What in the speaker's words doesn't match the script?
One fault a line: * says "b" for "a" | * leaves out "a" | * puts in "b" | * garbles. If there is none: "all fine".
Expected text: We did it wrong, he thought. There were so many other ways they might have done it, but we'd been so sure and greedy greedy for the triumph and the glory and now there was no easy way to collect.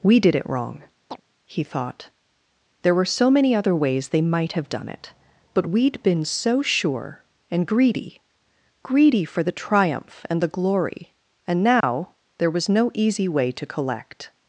all fine